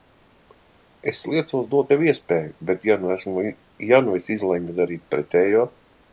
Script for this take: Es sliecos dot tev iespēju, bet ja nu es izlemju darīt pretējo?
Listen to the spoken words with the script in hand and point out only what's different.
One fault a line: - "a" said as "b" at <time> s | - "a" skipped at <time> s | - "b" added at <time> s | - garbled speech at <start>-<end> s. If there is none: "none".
none